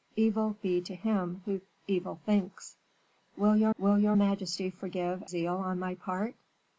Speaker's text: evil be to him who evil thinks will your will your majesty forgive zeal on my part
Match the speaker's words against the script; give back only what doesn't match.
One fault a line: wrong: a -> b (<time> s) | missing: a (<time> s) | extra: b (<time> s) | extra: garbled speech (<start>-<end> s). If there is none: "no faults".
no faults